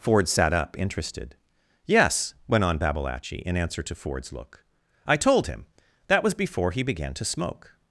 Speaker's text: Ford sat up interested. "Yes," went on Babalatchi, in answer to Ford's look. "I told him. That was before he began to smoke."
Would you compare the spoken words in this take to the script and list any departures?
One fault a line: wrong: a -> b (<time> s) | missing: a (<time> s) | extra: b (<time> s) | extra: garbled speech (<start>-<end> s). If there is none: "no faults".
no faults